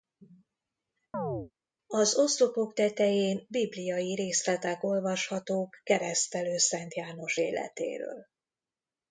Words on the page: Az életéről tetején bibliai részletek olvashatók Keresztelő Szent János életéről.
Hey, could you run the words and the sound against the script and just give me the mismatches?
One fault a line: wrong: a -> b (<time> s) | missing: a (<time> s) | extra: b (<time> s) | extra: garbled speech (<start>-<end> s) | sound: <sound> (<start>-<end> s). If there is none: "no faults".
sound: chirp (1.1-1.5 s)
wrong: életéről -> oszlopok (2.2 s)